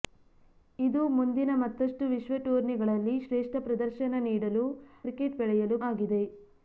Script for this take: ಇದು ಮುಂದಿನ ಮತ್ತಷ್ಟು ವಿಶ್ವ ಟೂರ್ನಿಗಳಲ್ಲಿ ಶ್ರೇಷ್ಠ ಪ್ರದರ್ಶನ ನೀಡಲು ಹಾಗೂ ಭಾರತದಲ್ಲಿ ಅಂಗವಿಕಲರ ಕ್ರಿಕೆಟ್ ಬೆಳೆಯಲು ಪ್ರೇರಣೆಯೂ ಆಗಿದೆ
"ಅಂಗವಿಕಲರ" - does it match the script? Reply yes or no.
no